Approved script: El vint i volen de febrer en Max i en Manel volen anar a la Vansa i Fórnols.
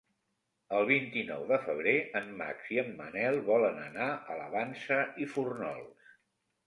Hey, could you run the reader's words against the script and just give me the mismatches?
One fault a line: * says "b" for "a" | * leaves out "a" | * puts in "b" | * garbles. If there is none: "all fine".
* says "nou" for "volen"